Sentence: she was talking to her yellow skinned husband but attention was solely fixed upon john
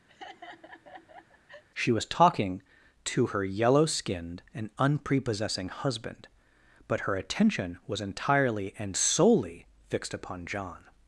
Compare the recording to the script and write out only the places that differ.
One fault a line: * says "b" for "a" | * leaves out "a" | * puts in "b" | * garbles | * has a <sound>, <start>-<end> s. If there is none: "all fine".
* has a laugh, 0.1-1.6 s
* puts in "and unprepossessing"
* puts in "her"
* puts in "entirely and"